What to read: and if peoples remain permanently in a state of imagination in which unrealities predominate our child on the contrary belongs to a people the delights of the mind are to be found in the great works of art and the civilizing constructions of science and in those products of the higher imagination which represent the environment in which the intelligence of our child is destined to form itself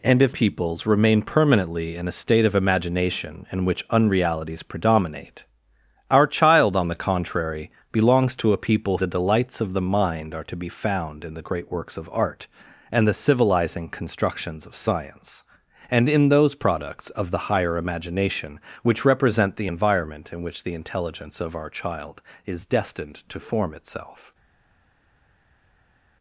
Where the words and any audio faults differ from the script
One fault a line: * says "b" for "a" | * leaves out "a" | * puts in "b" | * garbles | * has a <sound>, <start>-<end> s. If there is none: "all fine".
all fine